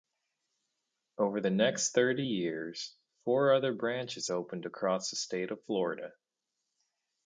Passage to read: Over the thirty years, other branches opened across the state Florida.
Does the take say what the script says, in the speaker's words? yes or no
no